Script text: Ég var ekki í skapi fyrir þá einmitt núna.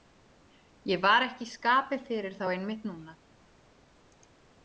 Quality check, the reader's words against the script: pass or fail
pass